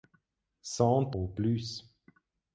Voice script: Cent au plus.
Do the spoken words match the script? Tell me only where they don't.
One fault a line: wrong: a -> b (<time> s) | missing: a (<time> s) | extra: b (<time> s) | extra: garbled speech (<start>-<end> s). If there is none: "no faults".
no faults